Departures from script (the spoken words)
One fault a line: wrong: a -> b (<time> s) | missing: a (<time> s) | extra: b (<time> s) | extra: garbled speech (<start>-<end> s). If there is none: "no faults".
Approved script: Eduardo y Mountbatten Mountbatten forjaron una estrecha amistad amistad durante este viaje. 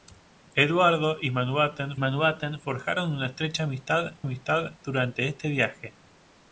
no faults